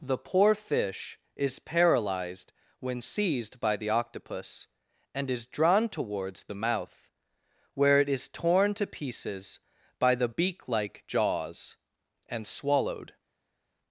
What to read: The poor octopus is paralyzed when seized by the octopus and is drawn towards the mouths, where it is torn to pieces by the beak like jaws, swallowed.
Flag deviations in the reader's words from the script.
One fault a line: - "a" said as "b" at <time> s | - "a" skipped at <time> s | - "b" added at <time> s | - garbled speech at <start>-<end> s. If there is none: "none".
- "octopus" said as "fish" at 0.6 s
- "mouths" said as "mouth" at 6.5 s
- "and" added at 12.3 s